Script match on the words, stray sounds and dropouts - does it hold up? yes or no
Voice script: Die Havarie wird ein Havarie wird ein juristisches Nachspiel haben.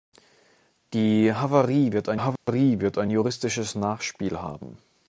no